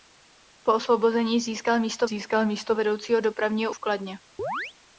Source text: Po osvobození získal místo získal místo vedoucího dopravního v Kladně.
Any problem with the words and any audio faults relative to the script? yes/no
yes